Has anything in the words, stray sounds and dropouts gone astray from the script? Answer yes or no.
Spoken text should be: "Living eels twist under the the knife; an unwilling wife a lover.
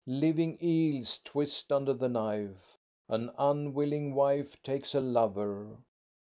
yes